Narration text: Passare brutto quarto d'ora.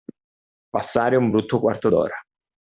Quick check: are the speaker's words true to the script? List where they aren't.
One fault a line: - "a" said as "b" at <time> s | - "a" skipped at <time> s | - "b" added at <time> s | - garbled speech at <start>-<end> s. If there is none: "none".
- "un" added at 1.1 s